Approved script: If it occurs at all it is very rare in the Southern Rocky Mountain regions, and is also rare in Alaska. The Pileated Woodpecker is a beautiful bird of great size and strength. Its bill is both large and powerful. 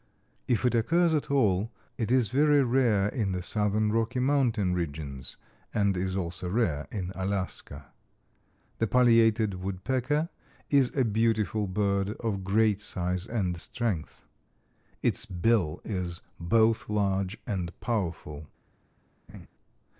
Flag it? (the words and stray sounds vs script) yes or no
yes